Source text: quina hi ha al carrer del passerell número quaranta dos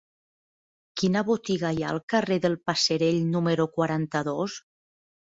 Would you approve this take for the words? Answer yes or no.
no